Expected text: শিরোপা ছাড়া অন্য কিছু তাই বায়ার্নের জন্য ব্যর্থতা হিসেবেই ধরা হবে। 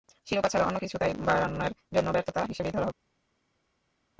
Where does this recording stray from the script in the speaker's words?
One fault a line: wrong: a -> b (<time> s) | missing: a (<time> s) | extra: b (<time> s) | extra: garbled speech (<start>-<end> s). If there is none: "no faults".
no faults